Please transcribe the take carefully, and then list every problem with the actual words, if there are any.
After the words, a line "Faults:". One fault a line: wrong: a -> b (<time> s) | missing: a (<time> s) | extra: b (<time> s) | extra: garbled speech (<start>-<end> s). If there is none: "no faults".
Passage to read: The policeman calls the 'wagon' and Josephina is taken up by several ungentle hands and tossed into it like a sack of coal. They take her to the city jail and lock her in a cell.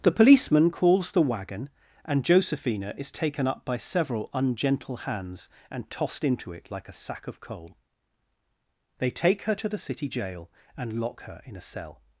The policeman calls the 'wagon' and Josephina is taken up by several ungentle hands and tossed into it like a sack of coal. They take her to the city jail and lock her in a cell.
Faults:
no faults